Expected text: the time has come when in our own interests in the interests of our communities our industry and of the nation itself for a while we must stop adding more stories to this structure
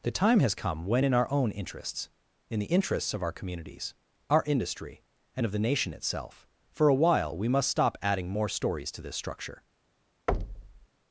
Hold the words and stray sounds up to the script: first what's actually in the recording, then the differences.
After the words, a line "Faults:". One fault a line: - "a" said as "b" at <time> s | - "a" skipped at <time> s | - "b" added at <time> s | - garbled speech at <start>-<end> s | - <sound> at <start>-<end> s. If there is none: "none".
the time has come when in our own interests in the interests of our communities our industry and of the nation itself for a while we must stop adding more stories to this structure
Faults:
- thud at 10.3-10.9 s